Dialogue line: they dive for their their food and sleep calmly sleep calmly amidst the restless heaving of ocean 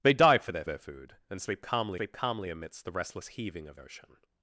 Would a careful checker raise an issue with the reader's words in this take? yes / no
no